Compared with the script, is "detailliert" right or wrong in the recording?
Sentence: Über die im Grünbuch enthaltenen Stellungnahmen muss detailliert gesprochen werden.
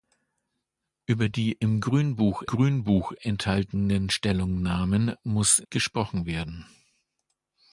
wrong